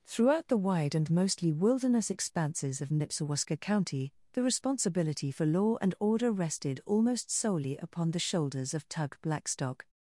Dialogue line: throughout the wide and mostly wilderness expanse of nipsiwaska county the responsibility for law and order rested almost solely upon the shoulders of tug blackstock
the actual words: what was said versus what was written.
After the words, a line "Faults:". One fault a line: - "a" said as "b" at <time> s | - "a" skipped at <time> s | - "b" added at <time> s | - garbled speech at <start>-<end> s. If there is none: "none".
throughout the wide and mostly wilderness expanses of nipsiwaska county the responsibility for law and order rested almost solely upon the shoulders of tug blackstock
Faults:
- "expanse" said as "expanses" at 2.1 s